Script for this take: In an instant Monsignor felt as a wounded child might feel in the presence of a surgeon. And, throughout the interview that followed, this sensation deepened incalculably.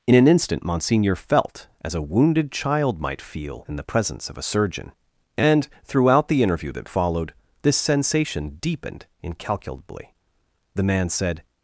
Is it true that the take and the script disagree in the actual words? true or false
true